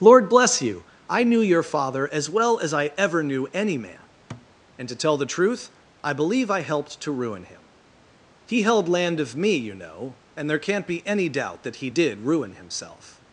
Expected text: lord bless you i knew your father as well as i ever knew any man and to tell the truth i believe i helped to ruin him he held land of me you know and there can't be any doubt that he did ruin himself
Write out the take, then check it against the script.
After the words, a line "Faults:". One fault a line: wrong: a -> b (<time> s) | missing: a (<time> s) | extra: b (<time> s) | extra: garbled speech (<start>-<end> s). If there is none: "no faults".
lord bless you i knew your father as well as i ever knew any man and to tell the truth i believe i helped to ruin him he held land of me you know and there can't be any doubt that he did ruin himself
Faults:
no faults